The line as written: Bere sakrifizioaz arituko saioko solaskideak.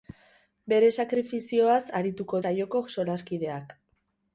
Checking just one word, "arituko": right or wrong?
right